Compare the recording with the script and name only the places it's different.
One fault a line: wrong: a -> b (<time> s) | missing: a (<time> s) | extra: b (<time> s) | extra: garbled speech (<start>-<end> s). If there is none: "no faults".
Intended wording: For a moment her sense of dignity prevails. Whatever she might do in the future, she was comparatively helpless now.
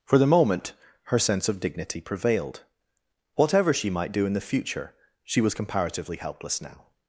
wrong: a -> the (0.2 s)
wrong: prevails -> prevailed (2.0 s)